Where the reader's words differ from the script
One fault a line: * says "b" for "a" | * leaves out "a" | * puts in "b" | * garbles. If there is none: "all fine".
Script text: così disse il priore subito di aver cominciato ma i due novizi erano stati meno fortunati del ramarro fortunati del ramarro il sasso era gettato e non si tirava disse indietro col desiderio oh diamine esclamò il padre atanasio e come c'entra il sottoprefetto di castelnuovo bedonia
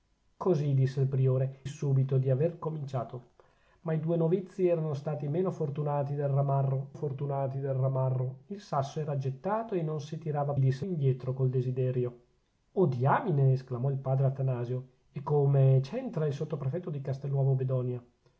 all fine